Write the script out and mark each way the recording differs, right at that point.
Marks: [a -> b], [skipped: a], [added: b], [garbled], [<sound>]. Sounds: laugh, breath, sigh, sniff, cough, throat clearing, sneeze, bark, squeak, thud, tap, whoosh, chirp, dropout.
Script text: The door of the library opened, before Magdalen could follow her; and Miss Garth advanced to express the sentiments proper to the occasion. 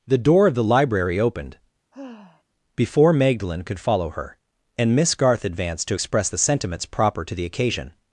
The door of the library opened, [sigh] before Magdalen could follow her; and Miss Garth advanced to express the sentiments proper to the occasion.